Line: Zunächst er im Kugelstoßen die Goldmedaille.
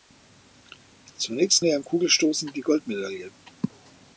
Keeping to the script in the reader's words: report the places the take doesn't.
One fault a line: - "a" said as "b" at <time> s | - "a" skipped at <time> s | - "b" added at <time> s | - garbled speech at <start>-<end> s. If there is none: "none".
none